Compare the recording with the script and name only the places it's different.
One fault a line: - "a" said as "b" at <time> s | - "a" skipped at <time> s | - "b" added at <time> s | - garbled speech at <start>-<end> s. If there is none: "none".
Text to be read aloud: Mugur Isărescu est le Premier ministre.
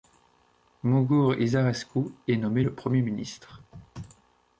- "nommé" added at 2.4 s